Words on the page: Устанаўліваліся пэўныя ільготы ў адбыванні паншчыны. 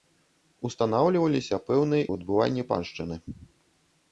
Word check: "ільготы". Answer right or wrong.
wrong